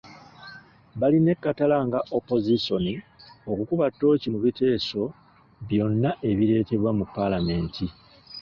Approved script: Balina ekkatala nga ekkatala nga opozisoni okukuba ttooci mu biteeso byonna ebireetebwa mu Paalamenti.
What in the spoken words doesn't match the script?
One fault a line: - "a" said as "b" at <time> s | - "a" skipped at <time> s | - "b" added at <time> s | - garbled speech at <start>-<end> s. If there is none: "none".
- "ekkatala nga" skipped at 2.0 s